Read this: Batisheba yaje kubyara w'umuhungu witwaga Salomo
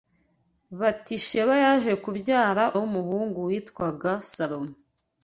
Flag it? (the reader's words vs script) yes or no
no